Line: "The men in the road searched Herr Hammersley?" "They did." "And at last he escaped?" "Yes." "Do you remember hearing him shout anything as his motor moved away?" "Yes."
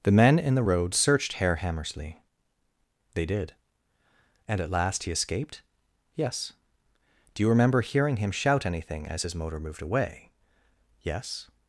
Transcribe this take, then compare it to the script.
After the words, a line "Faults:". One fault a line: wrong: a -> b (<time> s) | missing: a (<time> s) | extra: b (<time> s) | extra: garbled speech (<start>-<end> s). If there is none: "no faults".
"The men in the road searched Herr Hammersley?" "They did." "And at last he escaped?" "Yes." "Do you remember hearing him shout anything as his motor moved away?" "Yes."
Faults:
no faults